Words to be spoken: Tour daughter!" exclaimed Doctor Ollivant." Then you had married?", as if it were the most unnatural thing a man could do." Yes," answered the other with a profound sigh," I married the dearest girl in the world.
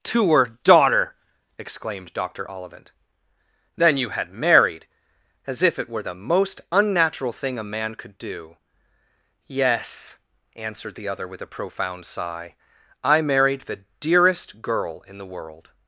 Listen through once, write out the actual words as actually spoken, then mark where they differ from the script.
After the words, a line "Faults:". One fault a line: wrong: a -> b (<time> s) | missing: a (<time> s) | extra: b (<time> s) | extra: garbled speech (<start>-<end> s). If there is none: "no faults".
Tour daughter!" exclaimed Doctor Ollivant." Then you had married?", as if it were the most unnatural thing a man could do." Yes," answered the other with a profound sigh," I married the dearest girl in the world.
Faults:
no faults